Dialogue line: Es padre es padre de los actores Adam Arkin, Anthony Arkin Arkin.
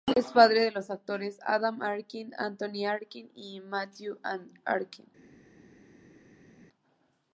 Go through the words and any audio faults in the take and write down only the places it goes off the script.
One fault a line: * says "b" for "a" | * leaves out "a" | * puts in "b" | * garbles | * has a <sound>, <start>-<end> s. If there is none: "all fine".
* leaves out "es padre"
* puts in "y Matthew"